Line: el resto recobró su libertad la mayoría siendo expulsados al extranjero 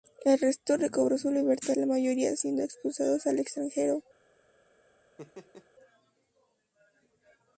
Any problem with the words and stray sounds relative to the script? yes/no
yes